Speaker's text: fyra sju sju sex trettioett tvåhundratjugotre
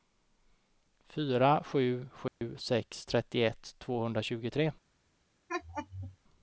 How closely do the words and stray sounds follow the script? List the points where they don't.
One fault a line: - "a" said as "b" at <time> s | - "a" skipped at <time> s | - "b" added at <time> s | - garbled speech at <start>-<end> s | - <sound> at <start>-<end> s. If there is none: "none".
- dropout at 2.3-2.4 s
- laugh at 5.5-6.2 s